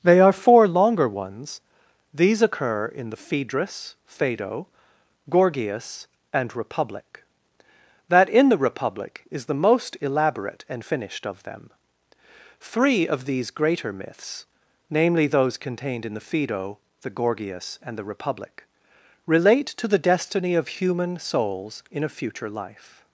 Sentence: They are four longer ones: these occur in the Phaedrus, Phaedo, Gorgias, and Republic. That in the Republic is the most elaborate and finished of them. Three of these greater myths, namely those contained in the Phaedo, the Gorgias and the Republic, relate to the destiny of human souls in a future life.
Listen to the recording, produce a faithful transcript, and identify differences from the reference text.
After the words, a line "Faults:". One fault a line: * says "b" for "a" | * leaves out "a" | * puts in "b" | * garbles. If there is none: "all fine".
They are four longer ones: these occur in the Phaedrus, Phaedo, Gorgias, and Republic. That in the Republic is the most elaborate and finished of them. Three of these greater myths, namely those contained in the Phaedo, the Gorgias and the Republic, relate to the destiny of human souls in a future life.
Faults:
all fine